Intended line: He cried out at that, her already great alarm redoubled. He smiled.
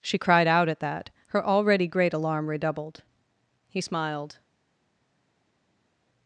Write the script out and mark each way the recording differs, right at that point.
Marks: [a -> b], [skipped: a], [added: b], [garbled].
[He -> She] cried out at that, her already great alarm redoubled. He smiled.